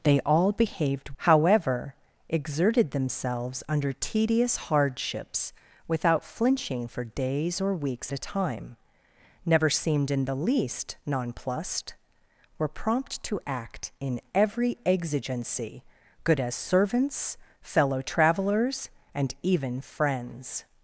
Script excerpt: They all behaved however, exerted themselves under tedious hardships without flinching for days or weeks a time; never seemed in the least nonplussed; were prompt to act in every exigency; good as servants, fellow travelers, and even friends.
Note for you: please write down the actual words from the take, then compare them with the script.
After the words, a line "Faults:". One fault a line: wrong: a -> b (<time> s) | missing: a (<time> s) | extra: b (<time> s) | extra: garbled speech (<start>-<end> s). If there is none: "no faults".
They all behaved however, exerted themselves under tedious hardships without flinching for days or weeks a time; never seemed in the least nonplussed; were prompt to act in every exigency; good as servants, fellow travelers, and even friends.
Faults:
no faults